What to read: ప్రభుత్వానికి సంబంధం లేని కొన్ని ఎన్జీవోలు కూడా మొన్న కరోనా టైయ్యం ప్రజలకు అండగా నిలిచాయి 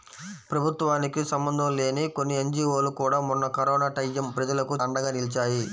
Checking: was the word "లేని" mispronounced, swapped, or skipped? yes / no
no